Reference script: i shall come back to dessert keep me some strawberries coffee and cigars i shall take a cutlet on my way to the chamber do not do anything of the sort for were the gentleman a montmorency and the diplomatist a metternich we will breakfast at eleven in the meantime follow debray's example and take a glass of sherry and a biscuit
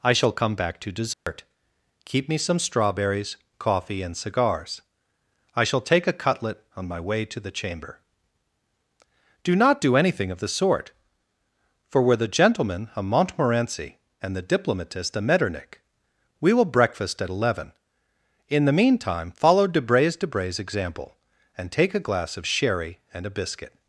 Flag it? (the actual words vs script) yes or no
yes